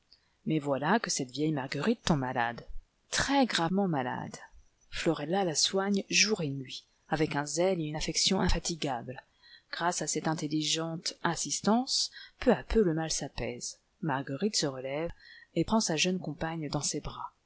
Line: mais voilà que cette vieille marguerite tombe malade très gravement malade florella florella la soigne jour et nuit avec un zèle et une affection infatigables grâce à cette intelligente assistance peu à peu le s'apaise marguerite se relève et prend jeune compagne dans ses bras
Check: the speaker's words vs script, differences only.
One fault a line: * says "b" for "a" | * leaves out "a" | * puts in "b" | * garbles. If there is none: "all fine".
* leaves out "florella"
* puts in "mal"
* puts in "sa"